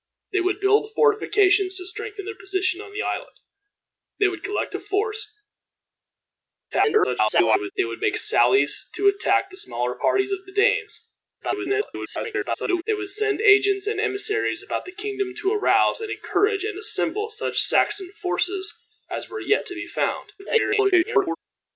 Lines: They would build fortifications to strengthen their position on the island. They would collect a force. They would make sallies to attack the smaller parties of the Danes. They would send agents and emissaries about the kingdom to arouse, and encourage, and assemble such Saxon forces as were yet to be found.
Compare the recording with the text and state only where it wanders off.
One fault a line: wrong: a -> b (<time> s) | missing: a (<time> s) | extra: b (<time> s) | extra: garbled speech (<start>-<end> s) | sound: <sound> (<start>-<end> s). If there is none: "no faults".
extra: garbled speech (6.7-7.7 s)
extra: garbled speech (11.4-12.8 s)
extra: garbled speech (20.4-21.4 s)